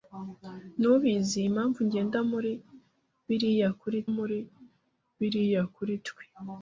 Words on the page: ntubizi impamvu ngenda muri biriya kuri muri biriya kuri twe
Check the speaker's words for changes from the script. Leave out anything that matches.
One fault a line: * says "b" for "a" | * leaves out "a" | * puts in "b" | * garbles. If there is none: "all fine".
all fine